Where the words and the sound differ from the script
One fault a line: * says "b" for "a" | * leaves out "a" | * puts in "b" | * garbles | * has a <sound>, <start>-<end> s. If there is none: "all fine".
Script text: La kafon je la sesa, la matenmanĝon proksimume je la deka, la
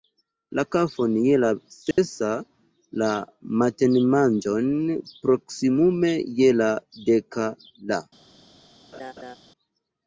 * has a dropout, 1.9-2.0 s
* has a laugh, 8.9-9.4 s